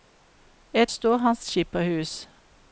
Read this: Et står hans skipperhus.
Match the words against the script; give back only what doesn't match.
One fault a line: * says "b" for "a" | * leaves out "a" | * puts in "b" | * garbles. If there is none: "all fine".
all fine